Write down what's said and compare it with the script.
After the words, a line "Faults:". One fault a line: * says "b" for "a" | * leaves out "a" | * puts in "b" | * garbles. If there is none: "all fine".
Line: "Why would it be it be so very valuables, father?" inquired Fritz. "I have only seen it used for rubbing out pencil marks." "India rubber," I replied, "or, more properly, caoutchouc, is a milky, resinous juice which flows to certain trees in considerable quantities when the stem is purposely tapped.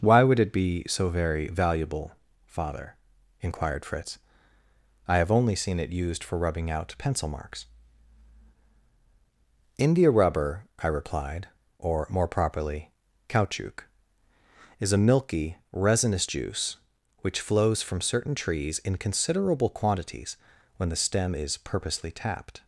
"Why would it be so very valuable, father?" inquired Fritz. "I have only seen it used for rubbing out pencil marks." "India rubber," I replied, "or, more properly, caoutchouc, is a milky, resinous juice which flows from certain trees in considerable quantities when the stem is purposely tapped.
Faults:
* leaves out "it be"
* says "valuable" for "valuables"
* says "from" for "to"